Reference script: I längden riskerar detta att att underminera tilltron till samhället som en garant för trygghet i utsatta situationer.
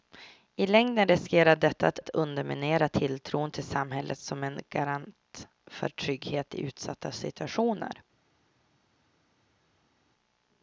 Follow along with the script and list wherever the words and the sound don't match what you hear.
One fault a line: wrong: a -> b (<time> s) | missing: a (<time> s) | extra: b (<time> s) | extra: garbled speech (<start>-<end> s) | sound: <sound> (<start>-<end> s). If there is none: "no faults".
no faults